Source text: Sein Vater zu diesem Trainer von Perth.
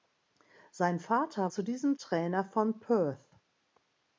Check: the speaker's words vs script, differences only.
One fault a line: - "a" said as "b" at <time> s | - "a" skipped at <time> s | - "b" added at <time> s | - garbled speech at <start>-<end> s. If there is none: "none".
none